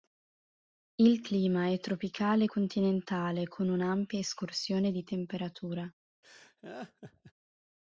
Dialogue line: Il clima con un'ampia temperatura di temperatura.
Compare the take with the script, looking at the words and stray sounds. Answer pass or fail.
fail